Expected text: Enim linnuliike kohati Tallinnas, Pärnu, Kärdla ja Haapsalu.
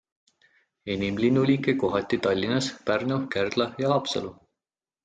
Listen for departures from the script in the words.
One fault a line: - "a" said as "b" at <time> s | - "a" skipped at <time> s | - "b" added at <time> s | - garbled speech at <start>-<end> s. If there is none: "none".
none